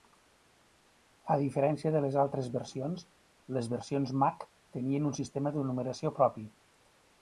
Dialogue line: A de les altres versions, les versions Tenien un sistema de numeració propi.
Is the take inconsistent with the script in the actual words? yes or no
yes